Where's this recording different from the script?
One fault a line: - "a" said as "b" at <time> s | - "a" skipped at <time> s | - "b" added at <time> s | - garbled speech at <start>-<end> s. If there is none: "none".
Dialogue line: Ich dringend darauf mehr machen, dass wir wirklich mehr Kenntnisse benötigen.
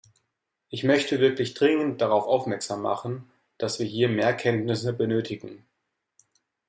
- "möchte wirklich" added at 0.8 s
- "mehr" said as "aufmerksam" at 2.2 s
- "wirklich" said as "hier" at 3.9 s